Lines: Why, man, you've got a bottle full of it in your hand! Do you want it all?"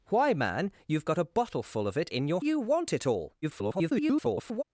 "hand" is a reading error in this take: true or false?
true